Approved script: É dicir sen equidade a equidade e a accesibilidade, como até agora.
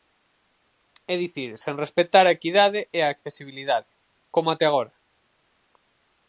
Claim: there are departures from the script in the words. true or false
true